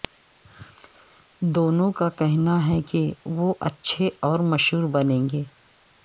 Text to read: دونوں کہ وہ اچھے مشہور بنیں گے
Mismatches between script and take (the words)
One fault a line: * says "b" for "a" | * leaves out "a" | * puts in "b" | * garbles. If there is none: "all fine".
* puts in "کا کہنا ہے"
* puts in "اور"